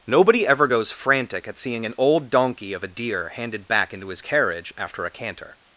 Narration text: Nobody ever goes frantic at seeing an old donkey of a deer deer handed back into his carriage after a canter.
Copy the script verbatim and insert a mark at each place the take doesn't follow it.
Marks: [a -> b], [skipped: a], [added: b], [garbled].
Nobody ever goes frantic at seeing an old donkey of a deer [skipped: deer] handed back into his carriage after a canter.